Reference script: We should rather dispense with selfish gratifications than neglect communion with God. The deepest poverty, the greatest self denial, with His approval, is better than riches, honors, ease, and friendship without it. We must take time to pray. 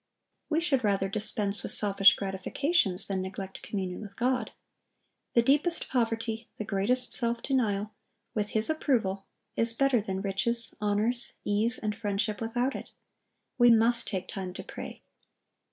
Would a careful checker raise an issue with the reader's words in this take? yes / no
no